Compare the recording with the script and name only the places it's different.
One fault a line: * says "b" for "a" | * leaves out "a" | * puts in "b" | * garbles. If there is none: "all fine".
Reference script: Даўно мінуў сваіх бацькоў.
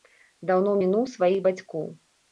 all fine